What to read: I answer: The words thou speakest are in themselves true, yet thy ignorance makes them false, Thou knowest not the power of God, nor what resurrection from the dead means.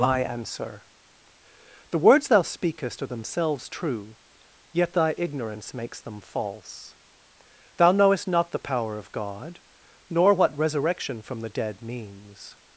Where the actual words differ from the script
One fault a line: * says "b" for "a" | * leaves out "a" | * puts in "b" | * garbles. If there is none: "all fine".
* leaves out "in"